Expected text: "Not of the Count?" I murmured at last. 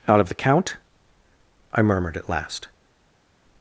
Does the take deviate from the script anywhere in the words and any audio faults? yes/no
yes